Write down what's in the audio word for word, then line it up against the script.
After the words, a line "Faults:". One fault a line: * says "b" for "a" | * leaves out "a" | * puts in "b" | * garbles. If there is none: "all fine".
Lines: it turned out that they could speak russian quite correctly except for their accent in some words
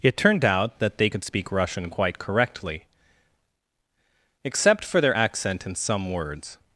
it turned out that they could speak russian quite correctly except for their accent in some words
Faults:
all fine